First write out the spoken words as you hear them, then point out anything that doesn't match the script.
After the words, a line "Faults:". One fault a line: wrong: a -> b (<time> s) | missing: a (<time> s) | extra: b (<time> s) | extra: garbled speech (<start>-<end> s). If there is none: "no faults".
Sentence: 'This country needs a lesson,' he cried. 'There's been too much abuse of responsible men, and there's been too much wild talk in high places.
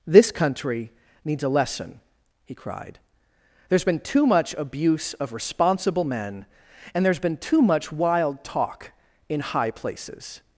'This country needs a lesson,' he cried. 'There's been too much abuse of responsible men, and there's been too much wild talk in high places.
Faults:
no faults